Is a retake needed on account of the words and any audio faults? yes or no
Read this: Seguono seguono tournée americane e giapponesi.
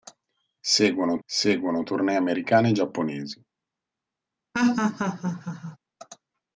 yes